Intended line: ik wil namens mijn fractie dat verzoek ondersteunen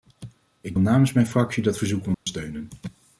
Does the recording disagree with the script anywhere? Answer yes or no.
yes